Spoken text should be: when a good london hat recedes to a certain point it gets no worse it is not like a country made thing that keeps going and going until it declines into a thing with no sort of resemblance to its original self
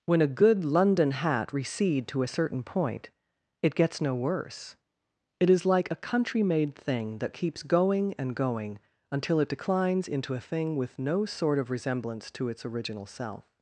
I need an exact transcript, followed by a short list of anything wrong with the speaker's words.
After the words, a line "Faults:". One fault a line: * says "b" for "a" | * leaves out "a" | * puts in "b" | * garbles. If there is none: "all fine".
when a good london hat recede to a certain point it gets no worse it is like a country made thing that keeps going and going until it declines into a thing with no sort of resemblance to its original self
Faults:
* says "recede" for "recedes"
* leaves out "not"